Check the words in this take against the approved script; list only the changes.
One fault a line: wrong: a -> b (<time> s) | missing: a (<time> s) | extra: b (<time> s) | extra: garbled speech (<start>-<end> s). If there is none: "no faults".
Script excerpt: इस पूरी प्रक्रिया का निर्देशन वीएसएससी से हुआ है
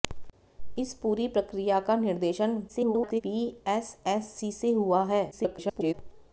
extra: garbled speech (2.7-3.2 s)
extra: garbled speech (5.3-5.9 s)